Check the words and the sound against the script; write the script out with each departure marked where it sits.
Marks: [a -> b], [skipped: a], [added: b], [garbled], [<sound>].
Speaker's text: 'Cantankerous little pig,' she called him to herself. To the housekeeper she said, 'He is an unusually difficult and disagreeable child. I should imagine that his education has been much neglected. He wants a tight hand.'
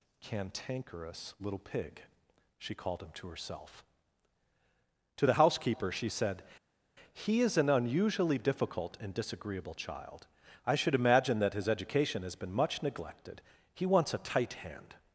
'Cantankerous little pig,' she called him to herself. To the housekeeper she said, 'He is an unusually difficult and disagreeable child. I should imagine that his education has been much neglected. He wants a tight hand.'